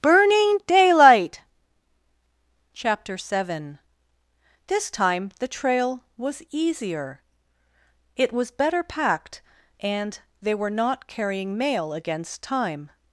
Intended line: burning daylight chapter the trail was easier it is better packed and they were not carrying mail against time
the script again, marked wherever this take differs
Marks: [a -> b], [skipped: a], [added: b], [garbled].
burning daylight chapter [added: seven this time] the trail was easier it [is -> was] better packed and they were not carrying mail against time